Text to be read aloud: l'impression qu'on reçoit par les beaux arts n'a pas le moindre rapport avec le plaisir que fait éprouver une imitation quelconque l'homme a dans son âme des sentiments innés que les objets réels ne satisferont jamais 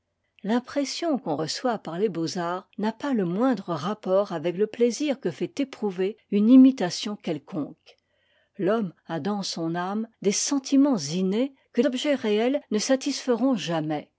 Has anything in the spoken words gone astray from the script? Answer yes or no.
yes